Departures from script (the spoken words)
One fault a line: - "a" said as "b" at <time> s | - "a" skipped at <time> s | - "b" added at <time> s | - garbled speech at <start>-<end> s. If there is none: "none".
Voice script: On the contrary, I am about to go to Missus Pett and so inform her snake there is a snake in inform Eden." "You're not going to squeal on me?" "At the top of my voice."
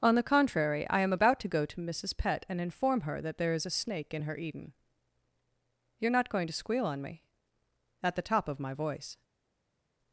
- "so" skipped at 2.6 s
- "snake" said as "that" at 3.2 s
- "inform" said as "her" at 4.2 s